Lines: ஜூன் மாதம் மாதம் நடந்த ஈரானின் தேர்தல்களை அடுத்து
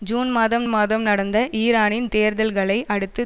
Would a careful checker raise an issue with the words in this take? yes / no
no